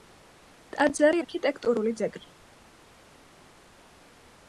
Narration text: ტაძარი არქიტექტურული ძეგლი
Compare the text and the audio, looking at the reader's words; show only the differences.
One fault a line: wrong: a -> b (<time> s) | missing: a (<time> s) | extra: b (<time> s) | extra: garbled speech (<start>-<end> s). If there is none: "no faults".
no faults